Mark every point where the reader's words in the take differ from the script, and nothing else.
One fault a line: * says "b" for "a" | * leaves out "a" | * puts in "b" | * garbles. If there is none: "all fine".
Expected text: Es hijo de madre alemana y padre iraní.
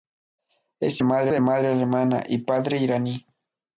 * says "madre" for "hijo"